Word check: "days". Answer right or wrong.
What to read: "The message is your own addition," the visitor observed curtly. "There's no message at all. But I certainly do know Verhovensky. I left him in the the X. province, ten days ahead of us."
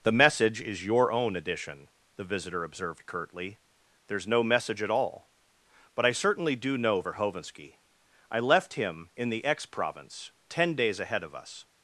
right